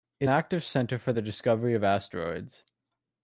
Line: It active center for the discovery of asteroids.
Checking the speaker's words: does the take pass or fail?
pass